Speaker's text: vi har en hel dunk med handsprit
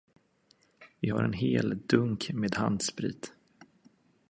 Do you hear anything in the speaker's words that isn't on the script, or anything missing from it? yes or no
no